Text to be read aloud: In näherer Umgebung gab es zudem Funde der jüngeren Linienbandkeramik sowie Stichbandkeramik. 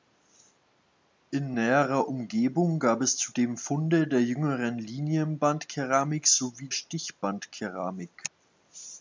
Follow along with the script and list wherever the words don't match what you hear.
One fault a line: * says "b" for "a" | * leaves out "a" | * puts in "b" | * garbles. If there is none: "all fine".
all fine